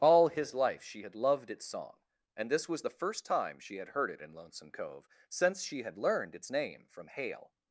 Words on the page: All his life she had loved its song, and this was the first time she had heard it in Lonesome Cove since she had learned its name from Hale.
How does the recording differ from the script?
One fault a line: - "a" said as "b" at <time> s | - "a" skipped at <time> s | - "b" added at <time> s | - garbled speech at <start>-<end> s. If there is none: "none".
none